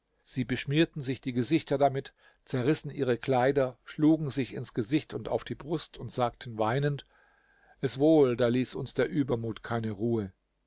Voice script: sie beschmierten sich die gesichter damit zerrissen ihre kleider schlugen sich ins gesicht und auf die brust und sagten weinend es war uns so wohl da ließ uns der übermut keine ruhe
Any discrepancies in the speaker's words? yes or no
yes